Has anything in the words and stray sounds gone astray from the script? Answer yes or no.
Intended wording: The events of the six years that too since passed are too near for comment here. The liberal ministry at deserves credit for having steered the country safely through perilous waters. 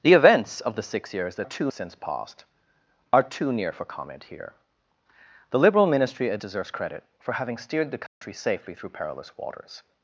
yes